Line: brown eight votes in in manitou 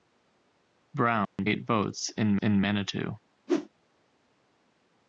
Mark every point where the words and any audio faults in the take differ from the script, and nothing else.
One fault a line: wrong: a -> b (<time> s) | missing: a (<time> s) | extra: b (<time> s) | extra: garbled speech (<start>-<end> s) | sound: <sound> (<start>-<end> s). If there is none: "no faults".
sound: dropout (1.2-1.4 s)
sound: whoosh (3.5-3.7 s)